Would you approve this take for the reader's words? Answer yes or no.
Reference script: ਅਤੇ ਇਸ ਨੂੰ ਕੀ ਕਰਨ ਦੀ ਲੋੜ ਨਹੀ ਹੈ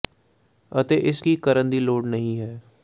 no